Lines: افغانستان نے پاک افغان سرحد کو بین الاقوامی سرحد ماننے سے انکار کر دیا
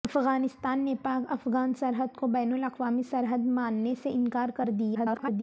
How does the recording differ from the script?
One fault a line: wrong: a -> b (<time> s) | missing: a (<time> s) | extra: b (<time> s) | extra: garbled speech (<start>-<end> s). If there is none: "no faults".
extra: garbled speech (4.9-5.4 s)